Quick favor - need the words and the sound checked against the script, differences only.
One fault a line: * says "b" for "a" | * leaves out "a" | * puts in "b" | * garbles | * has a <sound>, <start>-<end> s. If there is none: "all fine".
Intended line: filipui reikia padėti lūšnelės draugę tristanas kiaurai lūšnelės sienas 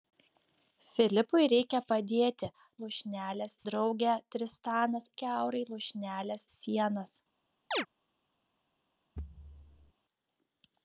* has a chirp, 7.7-7.9 s
* has a thud, 9.2-9.9 s